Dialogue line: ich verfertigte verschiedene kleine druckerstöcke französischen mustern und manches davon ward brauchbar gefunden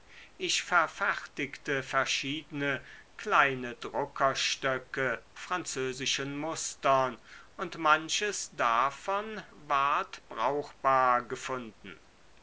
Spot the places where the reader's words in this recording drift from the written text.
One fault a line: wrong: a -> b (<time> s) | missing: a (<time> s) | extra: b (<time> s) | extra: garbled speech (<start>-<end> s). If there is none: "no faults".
no faults